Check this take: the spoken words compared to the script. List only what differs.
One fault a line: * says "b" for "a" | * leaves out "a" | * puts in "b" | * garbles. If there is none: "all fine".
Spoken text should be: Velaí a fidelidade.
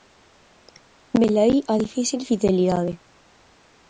* puts in "difícil"